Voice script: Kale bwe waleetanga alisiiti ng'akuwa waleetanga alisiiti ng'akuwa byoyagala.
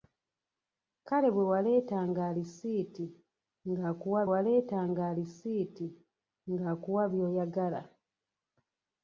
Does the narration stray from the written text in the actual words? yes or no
no